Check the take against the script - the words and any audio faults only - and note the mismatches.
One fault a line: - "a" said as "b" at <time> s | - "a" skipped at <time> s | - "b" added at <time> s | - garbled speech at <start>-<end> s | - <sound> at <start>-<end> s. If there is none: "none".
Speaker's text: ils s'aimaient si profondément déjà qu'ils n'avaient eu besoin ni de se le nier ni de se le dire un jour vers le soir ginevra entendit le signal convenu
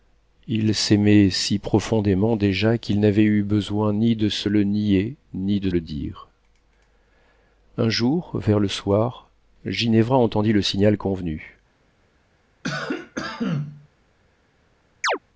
- "se" skipped at 5.7 s
- cough at 12.6-13.9 s
- chirp at 15.0-15.2 s